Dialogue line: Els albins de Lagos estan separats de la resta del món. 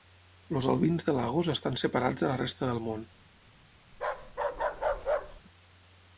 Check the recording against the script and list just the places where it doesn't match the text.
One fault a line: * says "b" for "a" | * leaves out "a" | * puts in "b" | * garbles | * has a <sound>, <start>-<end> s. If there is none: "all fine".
* has a bark, 3.9-5.4 s